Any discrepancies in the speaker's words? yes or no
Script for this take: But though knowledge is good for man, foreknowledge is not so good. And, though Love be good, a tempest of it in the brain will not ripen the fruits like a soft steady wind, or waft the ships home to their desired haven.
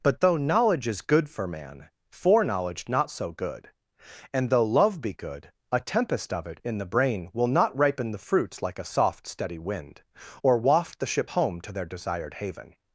yes